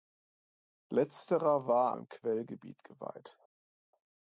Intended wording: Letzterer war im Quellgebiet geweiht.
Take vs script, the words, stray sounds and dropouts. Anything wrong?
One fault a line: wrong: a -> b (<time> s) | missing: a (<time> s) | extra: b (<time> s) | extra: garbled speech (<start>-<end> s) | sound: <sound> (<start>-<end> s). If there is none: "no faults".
no faults